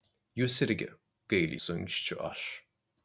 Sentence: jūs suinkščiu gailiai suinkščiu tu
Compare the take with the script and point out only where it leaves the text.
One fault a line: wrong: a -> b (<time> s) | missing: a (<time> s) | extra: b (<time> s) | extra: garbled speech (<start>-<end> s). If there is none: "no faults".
wrong: suinkščiu -> irgi (0.7 s)
wrong: tu -> aš (2.3 s)